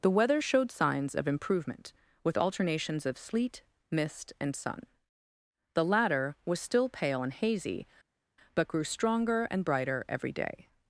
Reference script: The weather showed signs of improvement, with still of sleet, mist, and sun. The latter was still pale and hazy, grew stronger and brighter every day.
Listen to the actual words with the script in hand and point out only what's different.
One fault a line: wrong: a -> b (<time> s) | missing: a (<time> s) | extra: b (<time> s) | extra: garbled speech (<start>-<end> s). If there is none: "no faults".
wrong: still -> alternations (2.4 s)
extra: but (8.5 s)